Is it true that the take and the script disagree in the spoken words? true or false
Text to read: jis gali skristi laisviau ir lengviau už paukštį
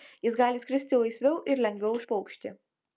false